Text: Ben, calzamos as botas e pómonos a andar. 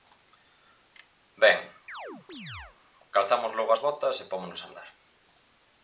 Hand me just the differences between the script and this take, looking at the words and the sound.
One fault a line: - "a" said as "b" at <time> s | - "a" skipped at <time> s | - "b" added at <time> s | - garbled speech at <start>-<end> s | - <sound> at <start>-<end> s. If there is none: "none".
- chirp at 1.9-2.8 s
- "logo" added at 3.6 s